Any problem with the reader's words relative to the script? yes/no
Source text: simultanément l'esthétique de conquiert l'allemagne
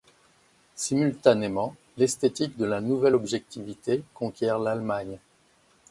yes